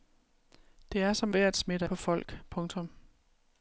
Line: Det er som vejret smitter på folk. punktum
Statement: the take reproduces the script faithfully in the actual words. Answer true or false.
true